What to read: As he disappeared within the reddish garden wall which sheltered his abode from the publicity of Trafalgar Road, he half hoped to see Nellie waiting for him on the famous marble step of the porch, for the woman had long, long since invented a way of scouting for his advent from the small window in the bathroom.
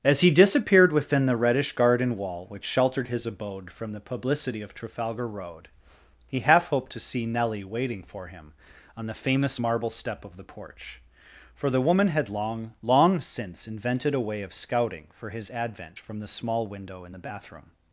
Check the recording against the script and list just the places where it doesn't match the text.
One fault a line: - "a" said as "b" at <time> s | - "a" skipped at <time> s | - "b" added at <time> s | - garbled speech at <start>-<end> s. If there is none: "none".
none